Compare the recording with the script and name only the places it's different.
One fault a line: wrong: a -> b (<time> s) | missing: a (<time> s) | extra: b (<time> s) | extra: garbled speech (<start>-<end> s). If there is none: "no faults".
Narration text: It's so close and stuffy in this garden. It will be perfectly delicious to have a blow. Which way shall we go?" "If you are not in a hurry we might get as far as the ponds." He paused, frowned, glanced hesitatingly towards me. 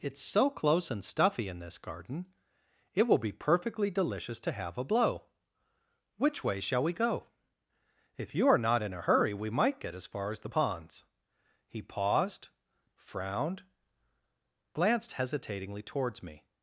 no faults